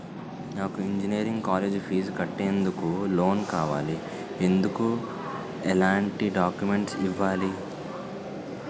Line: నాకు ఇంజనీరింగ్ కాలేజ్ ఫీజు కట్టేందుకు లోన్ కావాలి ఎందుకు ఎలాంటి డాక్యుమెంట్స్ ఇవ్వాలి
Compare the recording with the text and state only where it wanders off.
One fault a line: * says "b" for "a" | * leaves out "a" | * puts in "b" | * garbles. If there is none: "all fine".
all fine